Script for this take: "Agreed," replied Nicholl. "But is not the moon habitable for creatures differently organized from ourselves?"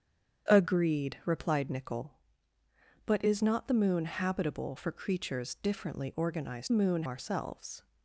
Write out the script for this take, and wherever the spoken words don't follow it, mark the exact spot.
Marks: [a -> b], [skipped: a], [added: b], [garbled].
"Agreed," replied Nicholl. "But is not the moon habitable for creatures differently organized [from -> moon] ourselves?"